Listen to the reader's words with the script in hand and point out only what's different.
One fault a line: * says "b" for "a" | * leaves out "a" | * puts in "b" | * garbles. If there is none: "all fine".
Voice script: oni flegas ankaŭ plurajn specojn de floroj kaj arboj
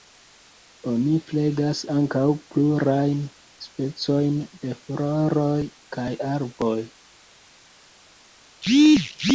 all fine